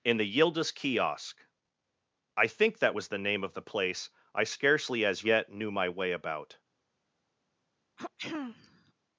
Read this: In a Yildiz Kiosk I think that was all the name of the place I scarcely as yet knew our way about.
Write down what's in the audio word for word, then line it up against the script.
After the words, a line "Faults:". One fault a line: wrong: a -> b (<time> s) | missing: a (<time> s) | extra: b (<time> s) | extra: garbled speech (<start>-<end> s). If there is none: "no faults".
In the Yildiz Kiosk I think that was the name of the place I scarcely as yet knew my way about.
Faults:
wrong: a -> the (0.2 s)
missing: all (3.1 s)
wrong: our -> my (5.7 s)